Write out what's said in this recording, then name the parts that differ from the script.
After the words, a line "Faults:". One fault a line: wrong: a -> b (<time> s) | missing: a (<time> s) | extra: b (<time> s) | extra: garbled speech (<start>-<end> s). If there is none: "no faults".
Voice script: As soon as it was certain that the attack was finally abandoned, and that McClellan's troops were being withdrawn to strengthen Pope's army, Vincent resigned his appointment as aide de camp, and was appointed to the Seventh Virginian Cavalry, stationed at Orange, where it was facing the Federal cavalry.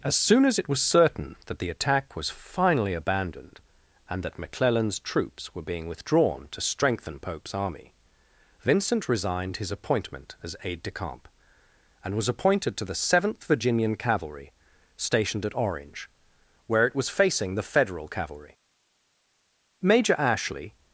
As soon as it was certain that the attack was finally abandoned, and that McClellan's troops were being withdrawn to strengthen Pope's army, Vincent resigned his appointment as aide de camp, and was appointed to the Seventh Virginian Cavalry, stationed at Orange, where it was facing the Federal cavalry. Major Ashley
Faults:
extra: Major Ashley (19.8 s)